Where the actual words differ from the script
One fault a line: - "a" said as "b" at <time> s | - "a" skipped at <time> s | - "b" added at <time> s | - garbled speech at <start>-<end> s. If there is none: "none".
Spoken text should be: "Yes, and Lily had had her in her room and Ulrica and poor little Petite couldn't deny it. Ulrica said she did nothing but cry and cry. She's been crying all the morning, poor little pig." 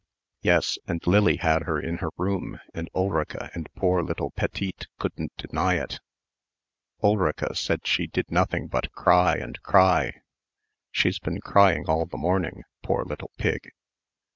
- "had" skipped at 1.6 s